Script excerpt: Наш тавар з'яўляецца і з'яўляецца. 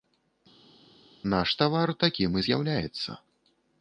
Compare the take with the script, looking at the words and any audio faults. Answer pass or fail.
fail